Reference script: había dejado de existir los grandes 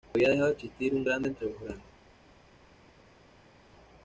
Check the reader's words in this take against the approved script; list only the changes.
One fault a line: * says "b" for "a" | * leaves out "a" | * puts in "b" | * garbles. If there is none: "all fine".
* puts in "un grande entre"